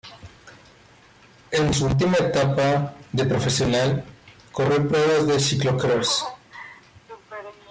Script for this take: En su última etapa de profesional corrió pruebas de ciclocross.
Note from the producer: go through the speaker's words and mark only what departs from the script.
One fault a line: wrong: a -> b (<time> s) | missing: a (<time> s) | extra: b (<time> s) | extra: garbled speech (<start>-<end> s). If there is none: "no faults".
no faults